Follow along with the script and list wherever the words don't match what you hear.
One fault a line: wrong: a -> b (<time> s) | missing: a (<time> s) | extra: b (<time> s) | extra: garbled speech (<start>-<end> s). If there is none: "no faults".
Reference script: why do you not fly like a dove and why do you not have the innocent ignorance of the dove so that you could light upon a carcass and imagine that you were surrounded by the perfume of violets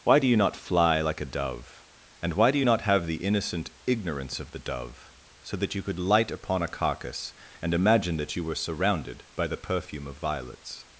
no faults